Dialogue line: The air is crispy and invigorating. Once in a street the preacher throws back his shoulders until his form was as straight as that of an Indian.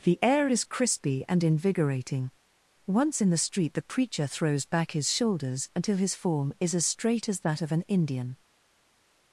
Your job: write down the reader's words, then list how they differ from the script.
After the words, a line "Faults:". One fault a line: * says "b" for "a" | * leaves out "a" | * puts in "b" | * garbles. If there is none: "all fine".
The air is crispy and invigorating. Once in the street the preacher throws back his shoulders until his form is as straight as that of an Indian.
Faults:
* says "the" for "a"
* says "is" for "was"